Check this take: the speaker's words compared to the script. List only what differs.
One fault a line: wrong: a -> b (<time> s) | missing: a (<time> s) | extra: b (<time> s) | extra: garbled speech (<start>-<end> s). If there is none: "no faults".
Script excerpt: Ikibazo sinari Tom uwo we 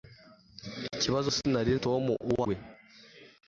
no faults